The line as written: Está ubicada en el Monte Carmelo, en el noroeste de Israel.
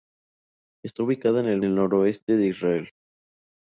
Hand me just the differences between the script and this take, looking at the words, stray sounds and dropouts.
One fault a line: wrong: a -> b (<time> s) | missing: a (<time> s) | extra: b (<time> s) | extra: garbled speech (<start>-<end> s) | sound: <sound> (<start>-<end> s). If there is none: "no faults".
missing: Monte Carmelo en (1.6 s)